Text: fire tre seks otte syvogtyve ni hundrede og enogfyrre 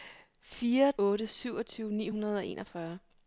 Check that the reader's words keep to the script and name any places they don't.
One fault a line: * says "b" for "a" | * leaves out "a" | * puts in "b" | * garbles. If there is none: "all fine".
* leaves out "tre seks"